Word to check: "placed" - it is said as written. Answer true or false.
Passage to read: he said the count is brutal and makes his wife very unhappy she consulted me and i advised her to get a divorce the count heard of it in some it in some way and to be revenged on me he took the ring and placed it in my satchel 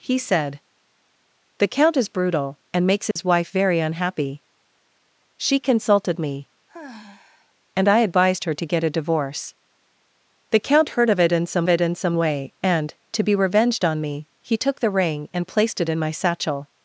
true